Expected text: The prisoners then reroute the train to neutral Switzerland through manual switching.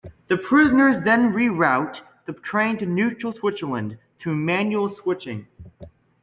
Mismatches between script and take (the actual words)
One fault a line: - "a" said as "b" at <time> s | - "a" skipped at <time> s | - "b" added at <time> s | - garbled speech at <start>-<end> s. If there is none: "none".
none